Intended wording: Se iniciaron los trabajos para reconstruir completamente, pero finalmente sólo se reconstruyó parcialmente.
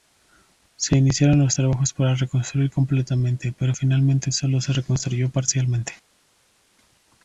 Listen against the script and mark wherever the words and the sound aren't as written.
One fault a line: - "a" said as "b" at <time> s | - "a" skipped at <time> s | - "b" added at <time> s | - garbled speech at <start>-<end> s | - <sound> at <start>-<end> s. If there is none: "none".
none